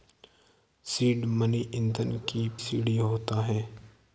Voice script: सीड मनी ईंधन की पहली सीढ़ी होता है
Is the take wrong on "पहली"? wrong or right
wrong